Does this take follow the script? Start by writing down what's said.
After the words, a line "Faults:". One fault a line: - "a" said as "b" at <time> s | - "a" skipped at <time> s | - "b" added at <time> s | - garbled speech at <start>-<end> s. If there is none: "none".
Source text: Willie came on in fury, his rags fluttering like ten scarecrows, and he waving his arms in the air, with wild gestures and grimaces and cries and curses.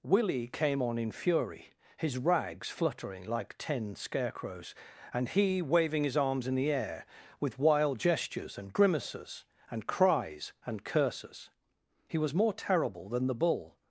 Willie came on in fury, his rags fluttering like ten scarecrows, and he waving his arms in the air, with wild gestures and grimaces and cries and curses. He was more terrible than the bull
Faults:
- "He was more terrible than the bull" added at 12.1 s